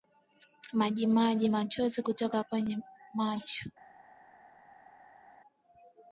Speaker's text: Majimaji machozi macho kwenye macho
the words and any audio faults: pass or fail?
fail